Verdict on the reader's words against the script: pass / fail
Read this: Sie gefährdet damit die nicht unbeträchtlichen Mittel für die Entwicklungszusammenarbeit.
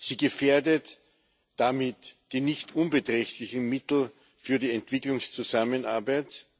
pass